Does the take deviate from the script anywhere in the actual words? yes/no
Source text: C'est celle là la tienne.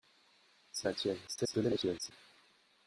yes